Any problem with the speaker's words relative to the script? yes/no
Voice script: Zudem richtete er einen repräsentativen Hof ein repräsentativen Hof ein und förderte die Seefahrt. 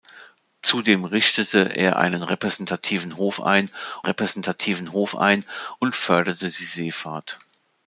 no